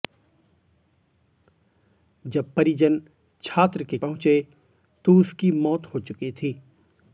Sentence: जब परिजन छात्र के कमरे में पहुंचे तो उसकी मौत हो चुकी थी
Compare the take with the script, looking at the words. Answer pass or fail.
fail